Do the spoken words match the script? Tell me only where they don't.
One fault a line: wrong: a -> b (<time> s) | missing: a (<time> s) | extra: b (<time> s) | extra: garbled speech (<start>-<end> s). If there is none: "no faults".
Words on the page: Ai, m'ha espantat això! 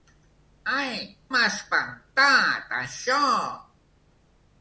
no faults